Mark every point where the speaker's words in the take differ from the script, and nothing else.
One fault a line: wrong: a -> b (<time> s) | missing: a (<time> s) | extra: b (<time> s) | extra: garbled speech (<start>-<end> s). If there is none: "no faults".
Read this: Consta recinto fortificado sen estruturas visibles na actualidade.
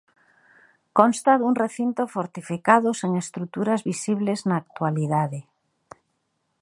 extra: dun (1.4 s)